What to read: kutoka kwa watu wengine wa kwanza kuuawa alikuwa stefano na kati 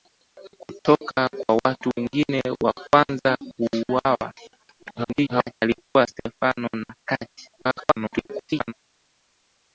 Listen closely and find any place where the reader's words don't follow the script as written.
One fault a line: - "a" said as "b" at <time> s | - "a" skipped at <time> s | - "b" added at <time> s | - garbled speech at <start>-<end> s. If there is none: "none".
- garbled speech at 4.8-5.5 s
- garbled speech at 7.6-8.7 s